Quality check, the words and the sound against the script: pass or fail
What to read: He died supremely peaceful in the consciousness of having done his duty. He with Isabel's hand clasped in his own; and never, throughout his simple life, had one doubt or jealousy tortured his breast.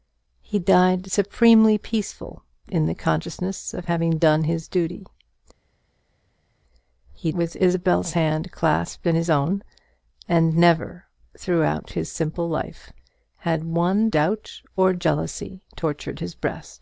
pass